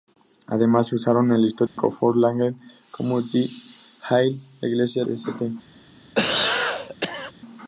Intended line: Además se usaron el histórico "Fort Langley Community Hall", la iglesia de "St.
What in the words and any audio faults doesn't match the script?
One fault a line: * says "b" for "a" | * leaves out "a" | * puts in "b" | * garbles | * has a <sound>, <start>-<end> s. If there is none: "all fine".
* has a dropout, 1.7-1.8 s
* leaves out "de"
* has a cough, 6.1-7.3 s